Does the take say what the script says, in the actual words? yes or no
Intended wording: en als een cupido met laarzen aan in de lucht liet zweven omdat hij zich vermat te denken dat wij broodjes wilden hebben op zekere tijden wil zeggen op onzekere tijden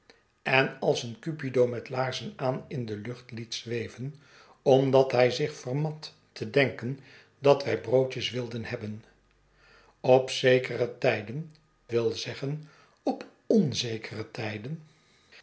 yes